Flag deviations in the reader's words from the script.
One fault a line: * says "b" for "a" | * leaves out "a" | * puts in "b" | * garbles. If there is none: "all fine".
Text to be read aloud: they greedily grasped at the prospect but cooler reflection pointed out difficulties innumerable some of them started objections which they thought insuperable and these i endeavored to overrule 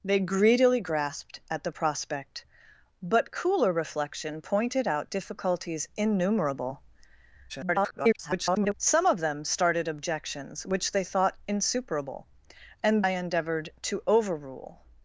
* garbles
* leaves out "these"